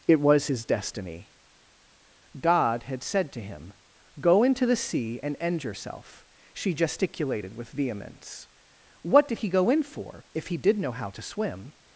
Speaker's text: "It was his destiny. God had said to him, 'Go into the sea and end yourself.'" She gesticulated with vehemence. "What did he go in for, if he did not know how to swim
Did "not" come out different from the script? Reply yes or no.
yes